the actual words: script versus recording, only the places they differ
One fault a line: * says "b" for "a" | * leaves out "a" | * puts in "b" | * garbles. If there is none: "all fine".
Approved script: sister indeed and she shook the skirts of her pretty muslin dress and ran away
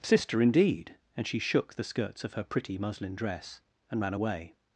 all fine